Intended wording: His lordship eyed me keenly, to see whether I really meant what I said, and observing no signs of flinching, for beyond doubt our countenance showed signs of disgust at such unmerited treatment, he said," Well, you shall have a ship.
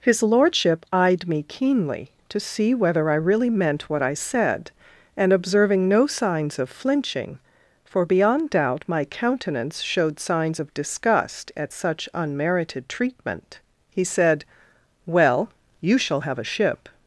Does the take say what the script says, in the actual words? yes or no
no